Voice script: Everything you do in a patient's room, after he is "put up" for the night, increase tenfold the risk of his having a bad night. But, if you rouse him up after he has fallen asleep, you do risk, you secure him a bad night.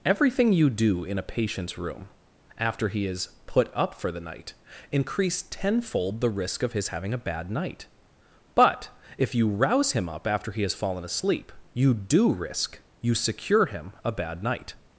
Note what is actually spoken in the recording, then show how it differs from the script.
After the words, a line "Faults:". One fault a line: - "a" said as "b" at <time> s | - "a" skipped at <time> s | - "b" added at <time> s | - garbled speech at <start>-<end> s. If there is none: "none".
Everything you do in a patient's room, after he is "put up" for the night, increase tenfold the risk of his having a bad night. But, if you rouse him up after he has fallen asleep, you do risk, you secure him a bad night.
Faults:
none